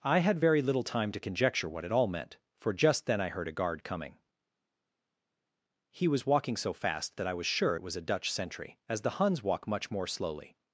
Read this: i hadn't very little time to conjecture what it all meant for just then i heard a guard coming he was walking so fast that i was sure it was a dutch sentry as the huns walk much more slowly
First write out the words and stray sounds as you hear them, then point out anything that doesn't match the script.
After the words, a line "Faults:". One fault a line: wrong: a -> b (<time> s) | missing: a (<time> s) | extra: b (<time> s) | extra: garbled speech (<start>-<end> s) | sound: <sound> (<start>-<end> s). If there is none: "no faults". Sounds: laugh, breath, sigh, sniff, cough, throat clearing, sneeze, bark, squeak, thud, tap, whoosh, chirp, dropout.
i had very little time to conjecture what it all meant for just then i heard a guard coming he was walking so fast that i was sure it was a dutch sentry as the huns walk much more slowly
Faults:
wrong: hadn't -> had (0.2 s)